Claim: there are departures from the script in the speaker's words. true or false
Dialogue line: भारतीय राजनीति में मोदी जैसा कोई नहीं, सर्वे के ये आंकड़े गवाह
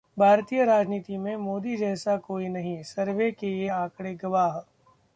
false